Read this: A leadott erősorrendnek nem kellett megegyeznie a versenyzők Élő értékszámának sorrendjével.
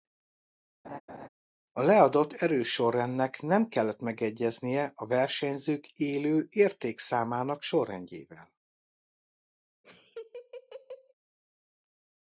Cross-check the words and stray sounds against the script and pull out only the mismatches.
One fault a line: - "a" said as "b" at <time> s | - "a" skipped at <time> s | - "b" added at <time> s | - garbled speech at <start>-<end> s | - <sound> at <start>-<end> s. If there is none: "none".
- laugh at 0.8-1.3 s
- laugh at 9.8-11.1 s